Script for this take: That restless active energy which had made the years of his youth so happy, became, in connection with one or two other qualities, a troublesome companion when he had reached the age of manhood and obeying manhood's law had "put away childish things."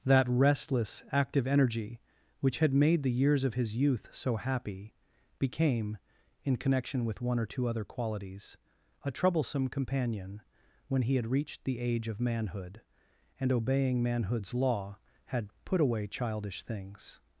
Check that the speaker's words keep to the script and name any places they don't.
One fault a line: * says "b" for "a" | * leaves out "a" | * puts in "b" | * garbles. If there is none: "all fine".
all fine